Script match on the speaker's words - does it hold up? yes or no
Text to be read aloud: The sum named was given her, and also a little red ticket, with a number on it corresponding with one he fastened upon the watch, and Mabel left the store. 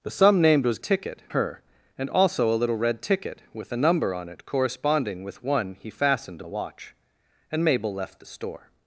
no